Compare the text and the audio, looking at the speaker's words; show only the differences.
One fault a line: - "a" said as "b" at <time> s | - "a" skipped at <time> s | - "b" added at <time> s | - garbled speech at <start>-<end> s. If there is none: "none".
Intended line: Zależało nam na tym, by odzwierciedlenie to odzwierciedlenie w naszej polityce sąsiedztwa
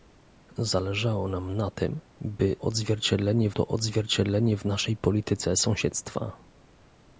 none